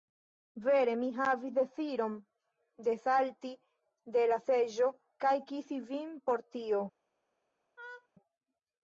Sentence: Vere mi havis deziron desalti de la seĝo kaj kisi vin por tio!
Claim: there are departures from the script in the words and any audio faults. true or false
true